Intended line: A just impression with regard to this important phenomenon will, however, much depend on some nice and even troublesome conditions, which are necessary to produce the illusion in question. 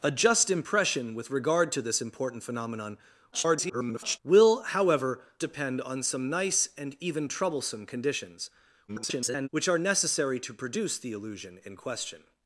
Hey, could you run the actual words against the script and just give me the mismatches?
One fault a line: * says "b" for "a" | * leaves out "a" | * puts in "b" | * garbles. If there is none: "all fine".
* garbles
* leaves out "much"
* garbles